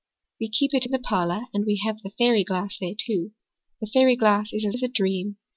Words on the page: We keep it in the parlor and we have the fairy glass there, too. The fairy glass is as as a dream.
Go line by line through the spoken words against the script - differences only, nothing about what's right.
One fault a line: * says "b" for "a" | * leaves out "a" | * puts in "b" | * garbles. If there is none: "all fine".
all fine